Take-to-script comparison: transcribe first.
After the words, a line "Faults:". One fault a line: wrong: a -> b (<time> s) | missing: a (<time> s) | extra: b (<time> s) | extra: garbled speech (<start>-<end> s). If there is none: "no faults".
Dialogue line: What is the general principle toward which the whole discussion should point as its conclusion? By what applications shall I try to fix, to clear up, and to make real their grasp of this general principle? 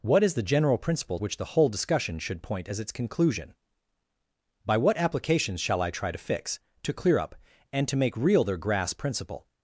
What is the general principle which the whole discussion should point as its conclusion? By what applications shall I try to fix, to clear up, and to make real their grasp principle?
Faults:
missing: toward (1.2 s)
missing: of this general (9.0 s)